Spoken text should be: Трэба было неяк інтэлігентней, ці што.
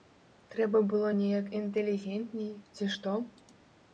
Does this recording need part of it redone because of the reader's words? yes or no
no